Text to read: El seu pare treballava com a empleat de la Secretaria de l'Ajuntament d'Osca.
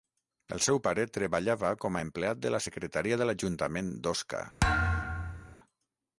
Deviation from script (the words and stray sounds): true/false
true